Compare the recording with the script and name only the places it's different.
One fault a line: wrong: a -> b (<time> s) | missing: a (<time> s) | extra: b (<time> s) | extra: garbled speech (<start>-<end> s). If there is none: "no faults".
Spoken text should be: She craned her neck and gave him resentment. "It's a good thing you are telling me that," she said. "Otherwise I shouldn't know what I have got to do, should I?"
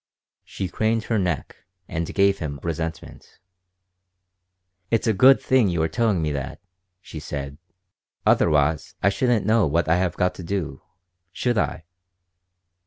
no faults